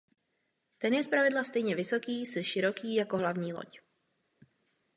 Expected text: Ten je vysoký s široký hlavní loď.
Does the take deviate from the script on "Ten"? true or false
false